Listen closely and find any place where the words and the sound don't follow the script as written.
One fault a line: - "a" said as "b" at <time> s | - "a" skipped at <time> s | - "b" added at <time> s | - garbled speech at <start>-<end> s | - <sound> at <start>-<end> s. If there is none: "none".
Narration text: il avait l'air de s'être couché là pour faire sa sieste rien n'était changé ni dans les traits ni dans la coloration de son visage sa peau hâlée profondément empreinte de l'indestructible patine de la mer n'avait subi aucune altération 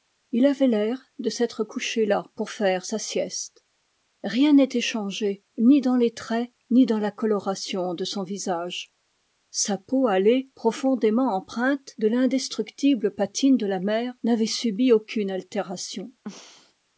- throat clearing at 16.2-16.7 s